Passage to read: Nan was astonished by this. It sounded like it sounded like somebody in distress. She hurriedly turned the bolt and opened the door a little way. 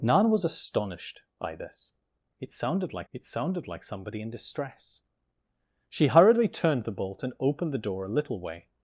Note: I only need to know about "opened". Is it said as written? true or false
true